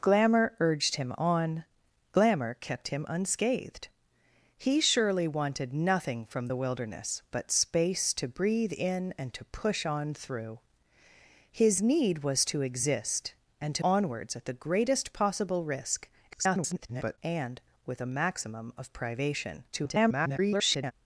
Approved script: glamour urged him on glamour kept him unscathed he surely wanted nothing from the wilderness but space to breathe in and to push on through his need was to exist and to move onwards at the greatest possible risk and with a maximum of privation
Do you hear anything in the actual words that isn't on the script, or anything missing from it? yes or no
yes